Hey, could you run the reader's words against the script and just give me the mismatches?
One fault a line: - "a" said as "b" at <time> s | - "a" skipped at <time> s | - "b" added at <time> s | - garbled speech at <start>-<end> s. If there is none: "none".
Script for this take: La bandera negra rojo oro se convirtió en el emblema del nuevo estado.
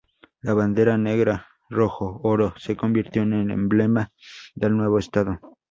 none